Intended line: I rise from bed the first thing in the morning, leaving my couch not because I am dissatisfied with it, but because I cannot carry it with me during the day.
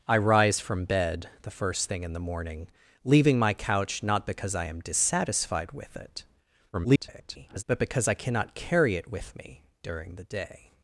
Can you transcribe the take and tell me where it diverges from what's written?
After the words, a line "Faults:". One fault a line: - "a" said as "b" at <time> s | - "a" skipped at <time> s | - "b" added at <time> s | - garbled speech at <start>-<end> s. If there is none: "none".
I rise from bed the first thing in the morning, leaving my couch not because I am dissatisfied with it, [garbled] but because I cannot carry it with me during the day.
Faults:
- garbled speech at 6.7-7.6 s